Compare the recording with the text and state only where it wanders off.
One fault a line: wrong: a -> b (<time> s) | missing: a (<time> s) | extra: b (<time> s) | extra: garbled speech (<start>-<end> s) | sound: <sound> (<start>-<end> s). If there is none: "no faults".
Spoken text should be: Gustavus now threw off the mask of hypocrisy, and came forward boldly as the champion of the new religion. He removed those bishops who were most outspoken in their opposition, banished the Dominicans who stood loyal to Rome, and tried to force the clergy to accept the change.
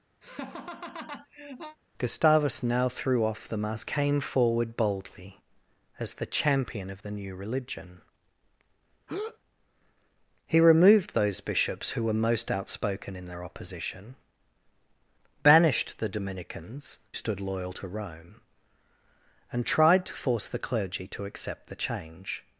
sound: laugh (0.2-1.8 s)
missing: of hypocrisy and (3.9 s)
sound: breath (9.1-9.4 s)
missing: who (17.0 s)